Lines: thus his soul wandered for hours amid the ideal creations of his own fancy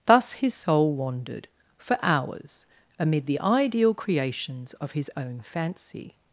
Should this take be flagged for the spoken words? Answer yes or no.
no